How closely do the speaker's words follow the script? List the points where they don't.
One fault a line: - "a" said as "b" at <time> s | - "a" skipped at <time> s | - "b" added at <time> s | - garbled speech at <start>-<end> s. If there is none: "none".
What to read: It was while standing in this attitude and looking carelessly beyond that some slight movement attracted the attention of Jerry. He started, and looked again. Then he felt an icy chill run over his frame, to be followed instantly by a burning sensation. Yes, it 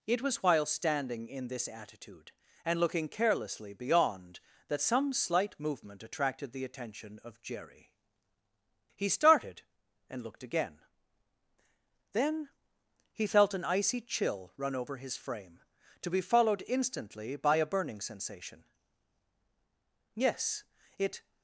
none